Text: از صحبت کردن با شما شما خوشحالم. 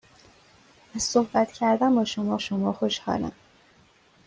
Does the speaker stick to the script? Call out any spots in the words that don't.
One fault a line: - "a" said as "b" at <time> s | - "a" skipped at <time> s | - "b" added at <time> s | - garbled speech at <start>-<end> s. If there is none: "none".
none